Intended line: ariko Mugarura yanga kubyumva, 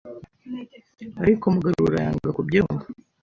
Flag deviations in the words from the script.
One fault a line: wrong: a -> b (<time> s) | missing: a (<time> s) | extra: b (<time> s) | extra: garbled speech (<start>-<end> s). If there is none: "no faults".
no faults